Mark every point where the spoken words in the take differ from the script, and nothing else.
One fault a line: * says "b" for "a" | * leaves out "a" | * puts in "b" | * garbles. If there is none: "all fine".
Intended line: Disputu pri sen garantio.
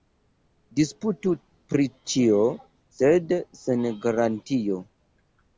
* puts in "ĉio sed"